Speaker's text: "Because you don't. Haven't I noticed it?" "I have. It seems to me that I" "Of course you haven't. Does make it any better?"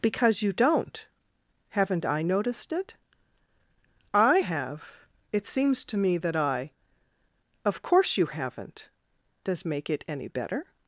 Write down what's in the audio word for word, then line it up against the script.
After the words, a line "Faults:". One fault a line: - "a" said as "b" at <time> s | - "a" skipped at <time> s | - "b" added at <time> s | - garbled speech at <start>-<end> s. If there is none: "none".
"Because you don't. Haven't I noticed it?" "I have. It seems to me that I" "Of course you haven't. Does make it any better?"
Faults:
none